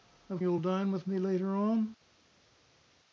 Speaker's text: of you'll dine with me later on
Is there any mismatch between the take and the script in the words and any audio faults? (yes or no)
no